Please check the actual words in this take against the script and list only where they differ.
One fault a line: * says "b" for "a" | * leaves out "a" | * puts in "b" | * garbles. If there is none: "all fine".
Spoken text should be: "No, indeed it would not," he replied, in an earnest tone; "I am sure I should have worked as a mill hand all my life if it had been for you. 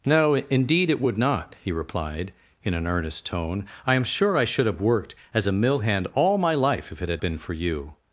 all fine